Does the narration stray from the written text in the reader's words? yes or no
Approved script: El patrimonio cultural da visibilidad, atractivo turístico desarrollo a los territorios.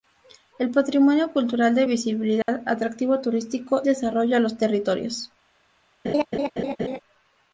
no